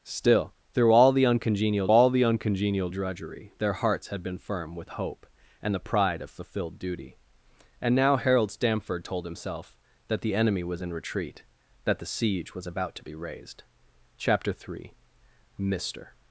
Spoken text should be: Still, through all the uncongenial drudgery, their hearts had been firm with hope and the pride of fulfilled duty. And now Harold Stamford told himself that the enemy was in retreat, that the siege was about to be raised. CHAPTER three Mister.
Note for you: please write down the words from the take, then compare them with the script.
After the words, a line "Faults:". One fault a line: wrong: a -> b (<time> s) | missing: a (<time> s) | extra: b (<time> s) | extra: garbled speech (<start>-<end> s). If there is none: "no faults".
Still, through all the uncongenial all the uncongenial drudgery, their hearts had been firm with hope and the pride of fulfilled duty. And now Harold Stamford told himself that the enemy was in retreat, that the siege was about to be raised. CHAPTER three Mister.
Faults:
extra: all the uncongenial (1.9 s)